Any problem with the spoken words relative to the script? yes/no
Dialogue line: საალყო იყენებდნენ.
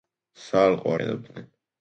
no